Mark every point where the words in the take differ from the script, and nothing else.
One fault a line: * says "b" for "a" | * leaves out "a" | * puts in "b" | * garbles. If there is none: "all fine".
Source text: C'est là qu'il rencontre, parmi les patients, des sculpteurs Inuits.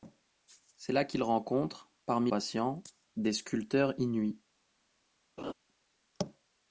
* leaves out "les"